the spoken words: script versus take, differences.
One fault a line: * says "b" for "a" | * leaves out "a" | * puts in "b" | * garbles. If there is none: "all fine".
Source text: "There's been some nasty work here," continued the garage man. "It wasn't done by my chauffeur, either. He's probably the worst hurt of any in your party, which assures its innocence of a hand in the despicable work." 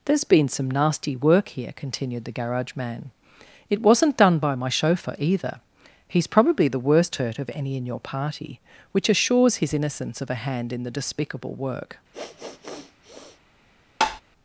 * says "his" for "its"